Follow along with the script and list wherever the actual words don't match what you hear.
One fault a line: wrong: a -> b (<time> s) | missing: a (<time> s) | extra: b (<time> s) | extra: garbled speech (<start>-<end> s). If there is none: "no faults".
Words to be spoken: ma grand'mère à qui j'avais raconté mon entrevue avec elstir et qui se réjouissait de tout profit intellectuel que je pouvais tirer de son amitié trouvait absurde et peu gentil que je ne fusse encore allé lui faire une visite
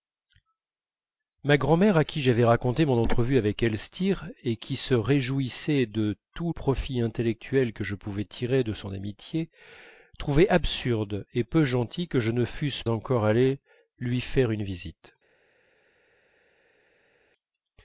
no faults